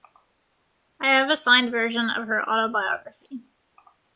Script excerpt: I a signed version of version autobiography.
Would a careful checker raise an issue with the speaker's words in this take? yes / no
yes